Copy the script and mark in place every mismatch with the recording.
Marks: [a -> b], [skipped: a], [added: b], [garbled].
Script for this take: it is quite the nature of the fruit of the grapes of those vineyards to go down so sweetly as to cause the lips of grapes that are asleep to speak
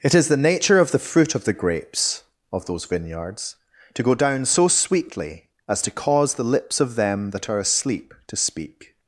it is [skipped: quite] the nature of the fruit of the grapes of those vineyards to go down so sweetly as to cause the lips of [grapes -> them] that are asleep to speak